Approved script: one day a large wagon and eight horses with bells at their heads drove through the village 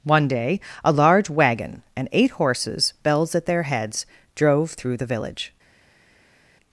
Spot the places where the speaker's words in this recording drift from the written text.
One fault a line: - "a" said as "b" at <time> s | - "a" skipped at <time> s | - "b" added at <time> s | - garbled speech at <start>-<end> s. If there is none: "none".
- "with" skipped at 2.9 s